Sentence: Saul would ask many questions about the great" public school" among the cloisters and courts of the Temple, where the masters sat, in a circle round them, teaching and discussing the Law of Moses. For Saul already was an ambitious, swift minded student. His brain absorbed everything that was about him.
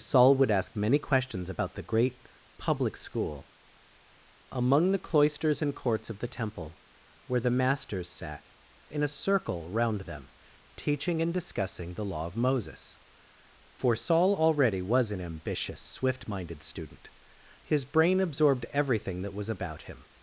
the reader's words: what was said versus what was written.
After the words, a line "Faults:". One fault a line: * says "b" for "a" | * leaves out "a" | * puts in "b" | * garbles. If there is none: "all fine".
Saul would ask many questions about the great" public school" among the cloisters and courts of the Temple, where the masters sat, in a circle round them, teaching and discussing the Law of Moses. For Saul already was an ambitious, swift minded student. His brain absorbed everything that was about him.
Faults:
all fine